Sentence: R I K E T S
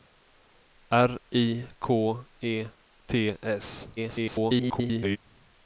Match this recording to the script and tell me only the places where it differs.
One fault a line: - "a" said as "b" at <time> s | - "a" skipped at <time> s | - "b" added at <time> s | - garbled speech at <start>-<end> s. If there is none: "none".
- garbled speech at 4.0-5.2 s